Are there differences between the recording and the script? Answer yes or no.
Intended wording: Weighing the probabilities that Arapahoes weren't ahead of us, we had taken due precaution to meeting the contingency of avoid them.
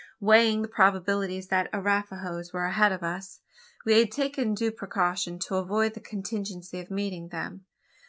yes